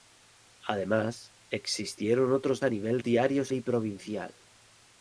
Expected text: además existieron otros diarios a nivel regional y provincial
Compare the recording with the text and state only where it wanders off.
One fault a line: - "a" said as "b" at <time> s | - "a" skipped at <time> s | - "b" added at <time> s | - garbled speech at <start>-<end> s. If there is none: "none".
- "diarios" skipped at 2.6 s
- "regional" said as "diarios" at 3.0 s